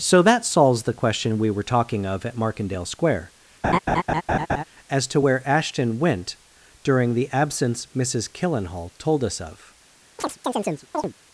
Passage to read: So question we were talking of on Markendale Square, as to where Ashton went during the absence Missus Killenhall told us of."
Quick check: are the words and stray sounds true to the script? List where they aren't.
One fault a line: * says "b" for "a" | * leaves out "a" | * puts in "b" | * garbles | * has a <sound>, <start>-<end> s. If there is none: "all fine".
* puts in "that solves the"
* says "at" for "on"
* has a laugh, 3.6-4.6 s
* has a chirp, 10.2-11.1 s